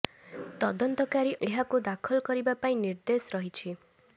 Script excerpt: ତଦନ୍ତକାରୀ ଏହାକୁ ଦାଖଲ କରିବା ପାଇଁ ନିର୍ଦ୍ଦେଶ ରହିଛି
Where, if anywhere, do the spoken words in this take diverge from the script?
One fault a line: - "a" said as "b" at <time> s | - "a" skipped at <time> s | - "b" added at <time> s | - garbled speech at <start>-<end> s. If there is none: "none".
none